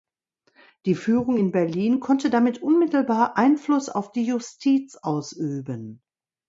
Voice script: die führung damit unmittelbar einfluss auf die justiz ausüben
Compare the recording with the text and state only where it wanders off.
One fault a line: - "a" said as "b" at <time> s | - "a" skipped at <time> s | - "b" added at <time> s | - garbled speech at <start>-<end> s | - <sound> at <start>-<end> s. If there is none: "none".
- "in berlin konnte" added at 1.3 s